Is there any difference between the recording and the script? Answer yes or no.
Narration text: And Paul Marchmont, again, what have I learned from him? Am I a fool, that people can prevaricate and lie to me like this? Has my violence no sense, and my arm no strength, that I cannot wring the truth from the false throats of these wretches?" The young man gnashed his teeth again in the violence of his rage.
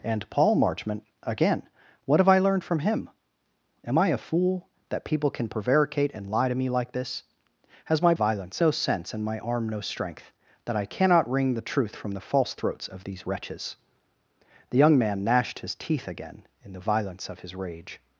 no